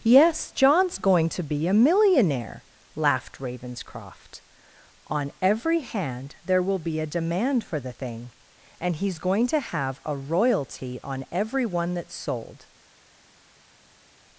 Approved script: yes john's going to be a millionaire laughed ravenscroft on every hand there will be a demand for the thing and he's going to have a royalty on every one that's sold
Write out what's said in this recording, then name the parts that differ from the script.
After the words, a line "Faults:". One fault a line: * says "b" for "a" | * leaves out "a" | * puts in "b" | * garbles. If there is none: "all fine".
yes john's going to be a millionaire laughed ravenscroft on every hand there will be a demand for the thing and he's going to have a royalty on every one that's sold
Faults:
all fine